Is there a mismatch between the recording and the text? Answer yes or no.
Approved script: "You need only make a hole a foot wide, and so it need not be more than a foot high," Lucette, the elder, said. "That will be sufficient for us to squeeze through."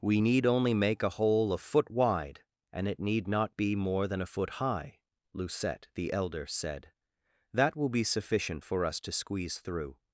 yes